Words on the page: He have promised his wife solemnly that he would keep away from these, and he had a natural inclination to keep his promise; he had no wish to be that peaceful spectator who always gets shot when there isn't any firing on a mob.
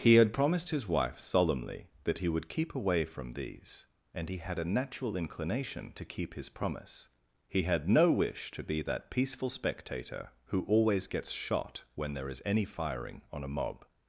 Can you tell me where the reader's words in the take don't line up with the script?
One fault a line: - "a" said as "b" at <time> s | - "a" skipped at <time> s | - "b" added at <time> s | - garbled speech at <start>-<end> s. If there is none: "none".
- "have" said as "had" at 0.1 s
- "isn't" said as "is" at 12.3 s